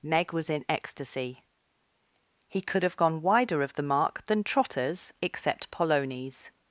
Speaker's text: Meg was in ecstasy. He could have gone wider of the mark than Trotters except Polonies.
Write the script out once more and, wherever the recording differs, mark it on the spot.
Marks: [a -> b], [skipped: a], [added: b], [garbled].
Meg was in ecstasy. He could have gone wider of the mark than Trotters except Polonies.